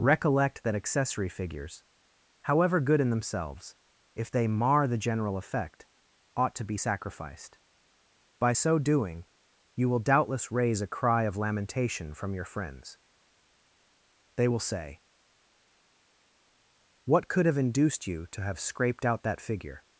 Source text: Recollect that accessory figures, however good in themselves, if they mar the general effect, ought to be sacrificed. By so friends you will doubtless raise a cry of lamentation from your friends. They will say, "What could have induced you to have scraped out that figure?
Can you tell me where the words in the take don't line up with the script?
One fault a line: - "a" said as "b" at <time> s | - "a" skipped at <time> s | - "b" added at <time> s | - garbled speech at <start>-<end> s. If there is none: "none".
- "friends" said as "doing" at 8.8 s